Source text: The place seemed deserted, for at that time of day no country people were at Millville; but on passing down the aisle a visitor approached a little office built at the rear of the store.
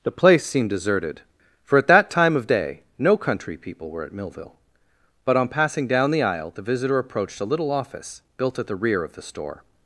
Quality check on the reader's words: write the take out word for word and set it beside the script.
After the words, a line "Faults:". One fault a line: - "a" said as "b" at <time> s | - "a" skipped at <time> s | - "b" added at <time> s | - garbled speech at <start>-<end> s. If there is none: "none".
The place seemed deserted, for at that time of day no country people were at Millville; but on passing down the aisle the visitor approached a little office built at the rear of the store.
Faults:
- "a" said as "the" at 6.5 s